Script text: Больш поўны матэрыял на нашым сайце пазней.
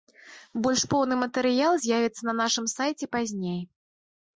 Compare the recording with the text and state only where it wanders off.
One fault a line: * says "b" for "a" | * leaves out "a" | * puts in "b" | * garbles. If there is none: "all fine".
* puts in "з'явіцца"